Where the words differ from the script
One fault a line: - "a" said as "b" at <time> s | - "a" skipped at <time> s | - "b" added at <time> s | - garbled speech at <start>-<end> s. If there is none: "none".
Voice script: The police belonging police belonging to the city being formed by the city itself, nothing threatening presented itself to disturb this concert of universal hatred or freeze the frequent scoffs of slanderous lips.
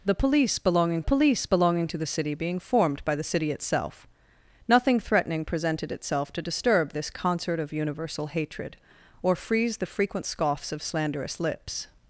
none